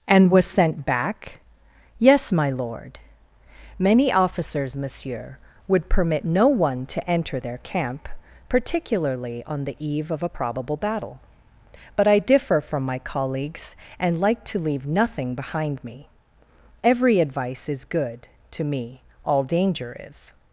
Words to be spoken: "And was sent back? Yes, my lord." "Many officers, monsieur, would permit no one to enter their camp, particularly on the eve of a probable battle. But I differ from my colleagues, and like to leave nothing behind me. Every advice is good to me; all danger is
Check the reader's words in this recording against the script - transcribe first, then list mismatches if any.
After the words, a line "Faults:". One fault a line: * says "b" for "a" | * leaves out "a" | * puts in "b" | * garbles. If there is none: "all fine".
"And was sent back? Yes, my lord." "Many officers, monsieur, would permit no one to enter their camp, particularly on the eve of a probable battle. But I differ from my colleagues, and like to leave nothing behind me. Every advice is good to me; all danger is
Faults:
all fine